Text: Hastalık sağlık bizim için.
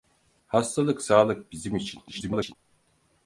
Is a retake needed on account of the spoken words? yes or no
yes